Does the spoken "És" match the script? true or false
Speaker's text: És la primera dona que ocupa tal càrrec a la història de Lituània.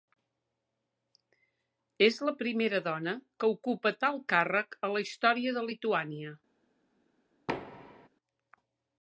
true